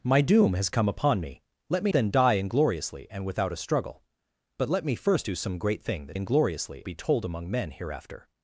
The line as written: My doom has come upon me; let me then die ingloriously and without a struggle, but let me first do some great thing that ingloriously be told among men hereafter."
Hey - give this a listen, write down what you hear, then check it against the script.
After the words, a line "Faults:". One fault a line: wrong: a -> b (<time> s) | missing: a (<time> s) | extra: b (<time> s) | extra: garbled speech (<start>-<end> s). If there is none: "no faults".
My doom has come upon me; let me then die ingloriously and without a struggle, but let me first do some great thing that ingloriously be told among men hereafter."
Faults:
no faults